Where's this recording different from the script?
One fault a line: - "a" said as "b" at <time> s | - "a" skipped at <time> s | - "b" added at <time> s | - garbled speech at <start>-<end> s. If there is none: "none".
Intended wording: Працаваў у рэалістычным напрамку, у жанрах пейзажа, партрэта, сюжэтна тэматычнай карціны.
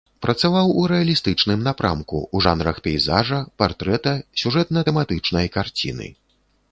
none